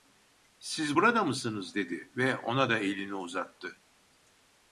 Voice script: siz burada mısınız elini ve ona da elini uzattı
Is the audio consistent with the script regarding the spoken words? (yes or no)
no